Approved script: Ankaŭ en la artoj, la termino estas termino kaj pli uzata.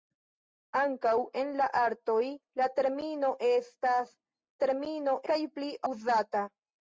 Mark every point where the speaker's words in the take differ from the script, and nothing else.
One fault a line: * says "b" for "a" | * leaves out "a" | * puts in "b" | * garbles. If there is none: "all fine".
all fine